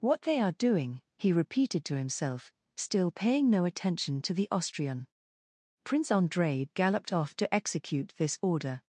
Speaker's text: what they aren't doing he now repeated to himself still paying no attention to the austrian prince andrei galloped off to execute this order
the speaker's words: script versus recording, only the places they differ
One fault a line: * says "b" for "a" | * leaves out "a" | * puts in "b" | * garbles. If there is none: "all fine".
* says "are" for "aren't"
* leaves out "now"